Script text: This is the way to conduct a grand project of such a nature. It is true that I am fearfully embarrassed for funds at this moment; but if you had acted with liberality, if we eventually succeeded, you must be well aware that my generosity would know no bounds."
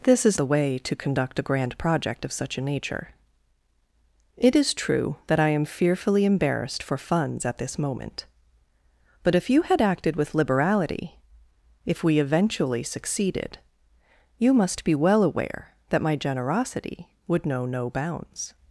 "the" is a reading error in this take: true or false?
false